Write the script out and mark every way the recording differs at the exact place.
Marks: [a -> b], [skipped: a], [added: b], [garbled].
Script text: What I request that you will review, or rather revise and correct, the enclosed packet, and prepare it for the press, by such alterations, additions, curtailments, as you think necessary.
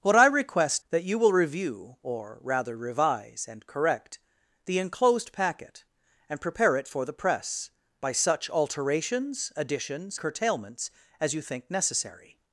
What I request that you will review, or rather revise and correct, the enclosed packet, and prepare it for the press, by such alterations, additions, curtailments, as you think necessary.